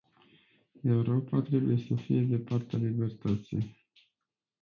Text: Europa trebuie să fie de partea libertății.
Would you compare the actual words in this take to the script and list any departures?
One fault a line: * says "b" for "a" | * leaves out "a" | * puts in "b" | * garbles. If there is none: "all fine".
all fine